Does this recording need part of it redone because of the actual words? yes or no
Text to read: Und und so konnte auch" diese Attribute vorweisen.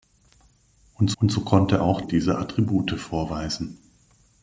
no